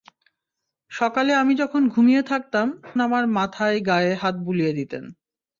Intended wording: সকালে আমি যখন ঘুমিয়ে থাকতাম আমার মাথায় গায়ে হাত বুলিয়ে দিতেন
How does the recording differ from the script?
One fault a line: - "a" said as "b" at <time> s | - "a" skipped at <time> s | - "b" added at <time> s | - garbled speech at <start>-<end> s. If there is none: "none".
none